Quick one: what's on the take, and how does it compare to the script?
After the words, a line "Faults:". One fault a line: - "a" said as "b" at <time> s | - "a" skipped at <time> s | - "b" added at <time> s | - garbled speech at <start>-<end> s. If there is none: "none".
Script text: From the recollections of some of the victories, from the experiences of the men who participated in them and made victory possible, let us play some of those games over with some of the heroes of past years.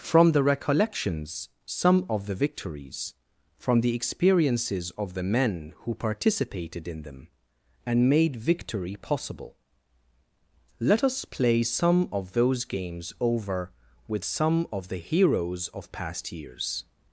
From the recollections some of the victories, from the experiences of the men who participated in them and made victory possible, let us play some of those games over with some of the heroes of past years.
Faults:
- "of" skipped at 1.5 s